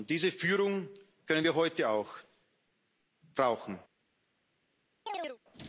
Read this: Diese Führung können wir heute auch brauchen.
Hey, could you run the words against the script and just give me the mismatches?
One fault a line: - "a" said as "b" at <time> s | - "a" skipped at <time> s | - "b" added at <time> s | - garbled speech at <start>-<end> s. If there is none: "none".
none